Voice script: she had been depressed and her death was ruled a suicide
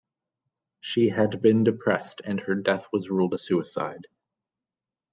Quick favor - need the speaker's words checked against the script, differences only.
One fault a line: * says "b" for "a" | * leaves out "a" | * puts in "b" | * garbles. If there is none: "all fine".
all fine